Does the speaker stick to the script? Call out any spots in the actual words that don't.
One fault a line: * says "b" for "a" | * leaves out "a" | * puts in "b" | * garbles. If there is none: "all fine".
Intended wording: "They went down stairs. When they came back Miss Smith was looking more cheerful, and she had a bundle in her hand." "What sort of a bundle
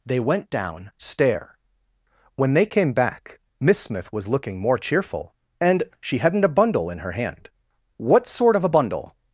* says "stair" for "stairs"
* says "hadn't" for "had"